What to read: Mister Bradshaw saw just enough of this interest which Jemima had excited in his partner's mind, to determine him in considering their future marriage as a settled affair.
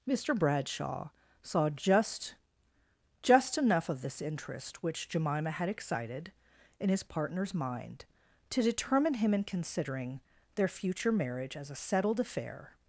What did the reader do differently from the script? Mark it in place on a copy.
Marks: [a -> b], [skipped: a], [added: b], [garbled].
Mister Bradshaw saw just [added: just] enough of this interest which Jemima had excited in his partner's mind, to determine him in considering their future marriage as a settled affair.